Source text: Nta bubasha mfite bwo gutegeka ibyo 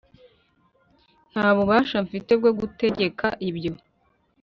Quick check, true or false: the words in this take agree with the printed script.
true